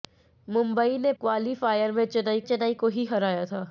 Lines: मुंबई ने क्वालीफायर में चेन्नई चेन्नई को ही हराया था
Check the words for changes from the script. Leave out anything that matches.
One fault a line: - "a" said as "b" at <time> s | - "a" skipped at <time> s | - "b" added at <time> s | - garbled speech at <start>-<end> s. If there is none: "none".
none